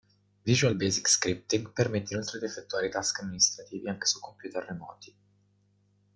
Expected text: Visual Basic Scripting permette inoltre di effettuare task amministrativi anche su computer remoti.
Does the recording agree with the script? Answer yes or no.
yes